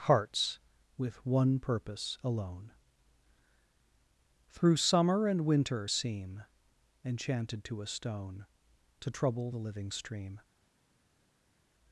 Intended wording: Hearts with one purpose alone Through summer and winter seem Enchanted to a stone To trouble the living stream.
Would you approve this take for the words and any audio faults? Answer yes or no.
yes